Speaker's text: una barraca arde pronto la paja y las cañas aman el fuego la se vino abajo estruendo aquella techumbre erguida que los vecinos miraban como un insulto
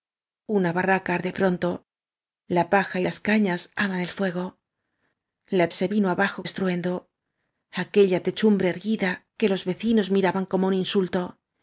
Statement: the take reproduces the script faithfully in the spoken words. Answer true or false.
true